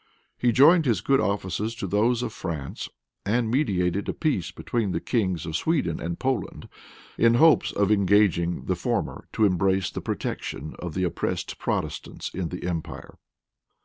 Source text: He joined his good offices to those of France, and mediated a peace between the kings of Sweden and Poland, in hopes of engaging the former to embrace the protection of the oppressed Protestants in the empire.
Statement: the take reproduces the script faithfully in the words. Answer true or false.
true